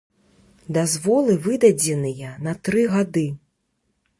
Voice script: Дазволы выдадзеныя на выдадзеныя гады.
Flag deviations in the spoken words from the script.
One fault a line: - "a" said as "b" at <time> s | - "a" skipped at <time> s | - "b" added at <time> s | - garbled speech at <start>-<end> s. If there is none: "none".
- "выдадзеныя" said as "тры" at 2.7 s